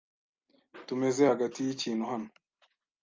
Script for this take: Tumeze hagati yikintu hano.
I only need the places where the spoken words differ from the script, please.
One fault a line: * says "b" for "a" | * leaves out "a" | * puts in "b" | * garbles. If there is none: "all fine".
all fine